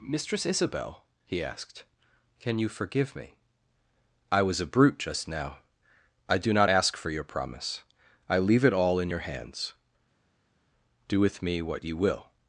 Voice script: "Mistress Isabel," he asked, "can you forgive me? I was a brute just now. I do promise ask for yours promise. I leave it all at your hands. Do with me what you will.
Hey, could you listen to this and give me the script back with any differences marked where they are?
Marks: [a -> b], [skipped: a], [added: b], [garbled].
"Mistress Isabel," he asked, "can you forgive me? I was a brute just now. I do [promise -> not] ask for [yours -> your] promise. I leave it all [at -> in] your hands. Do with me what you will.